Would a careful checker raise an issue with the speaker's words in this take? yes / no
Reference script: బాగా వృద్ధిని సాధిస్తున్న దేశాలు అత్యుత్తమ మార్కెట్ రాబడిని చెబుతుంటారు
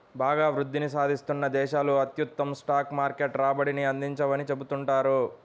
yes